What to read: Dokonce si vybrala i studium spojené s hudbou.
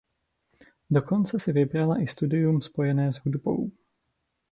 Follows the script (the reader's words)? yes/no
yes